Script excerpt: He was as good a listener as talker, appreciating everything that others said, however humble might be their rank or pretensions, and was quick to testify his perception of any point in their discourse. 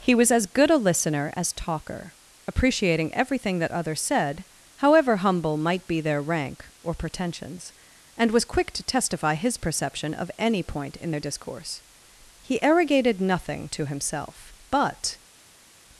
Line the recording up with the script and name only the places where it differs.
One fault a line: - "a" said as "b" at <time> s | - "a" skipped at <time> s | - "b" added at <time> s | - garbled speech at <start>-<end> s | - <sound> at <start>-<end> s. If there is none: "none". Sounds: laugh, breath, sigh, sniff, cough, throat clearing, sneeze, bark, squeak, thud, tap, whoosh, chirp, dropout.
- "He arrogated nothing to himself but" added at 12.4 s